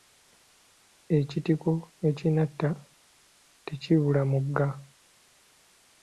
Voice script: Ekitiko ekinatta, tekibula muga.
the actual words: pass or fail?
pass